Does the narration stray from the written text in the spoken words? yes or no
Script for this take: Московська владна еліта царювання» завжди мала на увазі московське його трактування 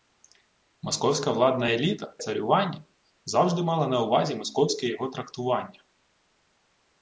no